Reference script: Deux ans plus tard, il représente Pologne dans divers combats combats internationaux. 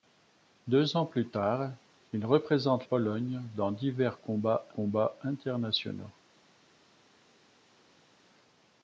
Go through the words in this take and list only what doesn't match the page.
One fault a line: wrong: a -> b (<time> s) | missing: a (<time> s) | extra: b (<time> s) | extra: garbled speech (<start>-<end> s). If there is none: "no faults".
no faults